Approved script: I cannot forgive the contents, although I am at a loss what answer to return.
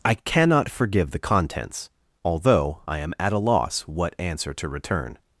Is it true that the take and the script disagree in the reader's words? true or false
false